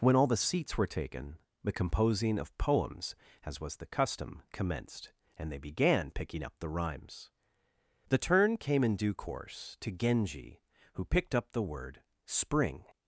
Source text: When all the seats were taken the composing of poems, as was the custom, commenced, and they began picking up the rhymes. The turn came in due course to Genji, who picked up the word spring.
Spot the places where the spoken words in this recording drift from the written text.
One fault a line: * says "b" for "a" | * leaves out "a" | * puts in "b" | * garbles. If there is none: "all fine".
all fine